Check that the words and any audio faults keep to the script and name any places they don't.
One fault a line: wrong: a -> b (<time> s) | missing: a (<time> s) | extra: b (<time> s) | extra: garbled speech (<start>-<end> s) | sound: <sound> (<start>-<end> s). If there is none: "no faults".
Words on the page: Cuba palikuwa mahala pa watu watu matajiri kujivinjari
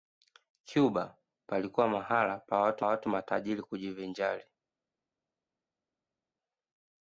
no faults